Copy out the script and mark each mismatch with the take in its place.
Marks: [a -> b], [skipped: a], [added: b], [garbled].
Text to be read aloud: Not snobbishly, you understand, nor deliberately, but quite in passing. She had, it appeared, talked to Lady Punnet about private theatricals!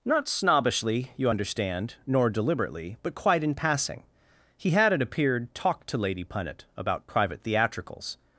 Not snobbishly, you understand, nor deliberately, but quite in passing. [She -> He] had, it appeared, talked to Lady Punnet about private theatricals!